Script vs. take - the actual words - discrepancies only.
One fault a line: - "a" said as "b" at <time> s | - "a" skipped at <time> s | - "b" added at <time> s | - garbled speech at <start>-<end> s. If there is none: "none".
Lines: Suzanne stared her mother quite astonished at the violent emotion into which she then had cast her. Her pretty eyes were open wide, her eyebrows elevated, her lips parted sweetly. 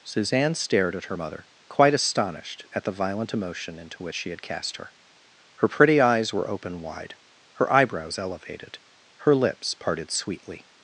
- "at" added at 0.9 s
- "then" skipped at 4.3 s